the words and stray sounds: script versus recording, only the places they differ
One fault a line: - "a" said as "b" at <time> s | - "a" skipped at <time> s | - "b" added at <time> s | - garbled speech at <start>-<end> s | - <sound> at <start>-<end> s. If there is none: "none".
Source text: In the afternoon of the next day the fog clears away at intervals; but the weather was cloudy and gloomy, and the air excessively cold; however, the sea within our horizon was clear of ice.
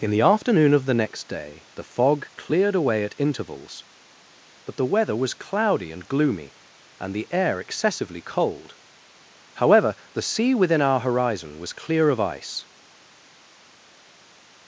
- "clears" said as "cleared" at 2.4 s